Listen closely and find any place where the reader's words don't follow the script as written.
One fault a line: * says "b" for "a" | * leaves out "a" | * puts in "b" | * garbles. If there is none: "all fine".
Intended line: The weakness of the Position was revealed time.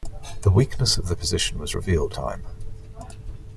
all fine